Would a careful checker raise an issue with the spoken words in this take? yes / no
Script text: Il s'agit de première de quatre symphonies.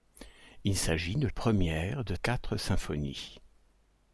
no